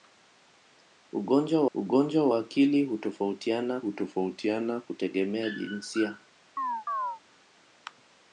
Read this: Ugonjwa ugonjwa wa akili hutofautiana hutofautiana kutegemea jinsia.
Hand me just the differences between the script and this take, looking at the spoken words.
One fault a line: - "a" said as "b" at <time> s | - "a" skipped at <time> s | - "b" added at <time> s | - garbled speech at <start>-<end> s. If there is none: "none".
none